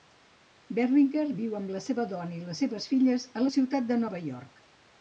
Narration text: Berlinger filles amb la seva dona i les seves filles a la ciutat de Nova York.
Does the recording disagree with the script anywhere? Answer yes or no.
yes